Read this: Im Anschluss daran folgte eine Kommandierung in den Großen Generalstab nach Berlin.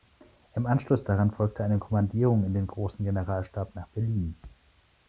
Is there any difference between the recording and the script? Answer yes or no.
no